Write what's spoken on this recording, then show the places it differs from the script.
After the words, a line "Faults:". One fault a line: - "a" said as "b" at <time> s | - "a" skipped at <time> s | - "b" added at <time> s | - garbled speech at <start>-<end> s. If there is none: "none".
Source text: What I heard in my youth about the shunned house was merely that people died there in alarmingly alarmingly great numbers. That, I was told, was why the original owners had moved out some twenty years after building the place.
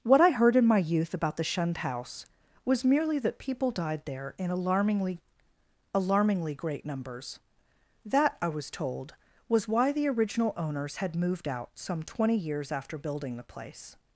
What I heard in my youth about the shunned house was merely that people died there in alarmingly alarmingly great numbers. That, I was told, was why the original owners had moved out some twenty years after building the place.
Faults:
none